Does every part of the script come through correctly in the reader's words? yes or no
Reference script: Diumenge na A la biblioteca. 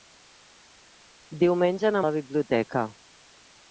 yes